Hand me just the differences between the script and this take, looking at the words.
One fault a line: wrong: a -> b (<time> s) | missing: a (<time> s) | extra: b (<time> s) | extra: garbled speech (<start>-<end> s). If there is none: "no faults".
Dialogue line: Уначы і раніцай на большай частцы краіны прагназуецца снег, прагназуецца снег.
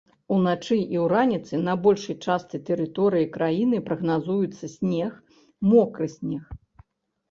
extra: тэрыторыі (2.7 s)
wrong: прагназуецца -> мокры (5.7 s)